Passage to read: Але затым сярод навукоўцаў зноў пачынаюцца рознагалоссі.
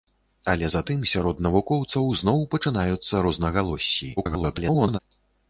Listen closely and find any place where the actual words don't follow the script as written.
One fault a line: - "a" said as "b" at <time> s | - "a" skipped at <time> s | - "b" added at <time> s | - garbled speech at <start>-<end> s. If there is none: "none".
- garbled speech at 4.2-5.0 s